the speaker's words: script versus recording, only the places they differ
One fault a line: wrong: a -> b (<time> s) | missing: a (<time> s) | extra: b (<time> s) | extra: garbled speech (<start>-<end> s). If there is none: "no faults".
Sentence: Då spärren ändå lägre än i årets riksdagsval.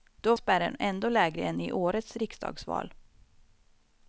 no faults